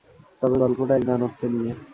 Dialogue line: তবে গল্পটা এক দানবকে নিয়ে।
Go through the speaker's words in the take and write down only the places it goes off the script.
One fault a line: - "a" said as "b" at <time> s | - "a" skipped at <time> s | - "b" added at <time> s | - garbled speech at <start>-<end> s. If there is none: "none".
none